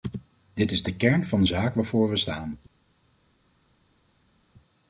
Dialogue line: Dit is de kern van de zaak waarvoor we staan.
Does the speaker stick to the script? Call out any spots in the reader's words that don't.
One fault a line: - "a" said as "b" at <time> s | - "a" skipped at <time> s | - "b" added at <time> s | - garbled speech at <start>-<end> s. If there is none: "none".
none